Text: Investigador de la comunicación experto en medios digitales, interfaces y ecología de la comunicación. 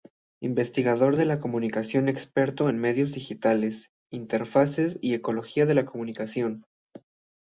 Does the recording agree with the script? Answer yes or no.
yes